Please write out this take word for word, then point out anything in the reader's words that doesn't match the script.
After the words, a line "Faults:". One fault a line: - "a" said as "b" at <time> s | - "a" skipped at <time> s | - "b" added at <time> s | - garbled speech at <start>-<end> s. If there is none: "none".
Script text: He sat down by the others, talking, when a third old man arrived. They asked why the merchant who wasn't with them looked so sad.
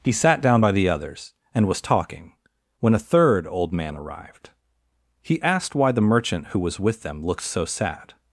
He sat down by the others, and was talking, when a third old man arrived. He asked why the merchant who was with them looked so sad.
Faults:
- "and was" added at 1.5 s
- "They" said as "He" at 5.2 s
- "wasn't" said as "was" at 6.6 s